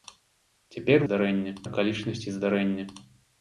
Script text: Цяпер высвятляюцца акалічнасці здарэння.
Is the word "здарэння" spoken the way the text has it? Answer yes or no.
yes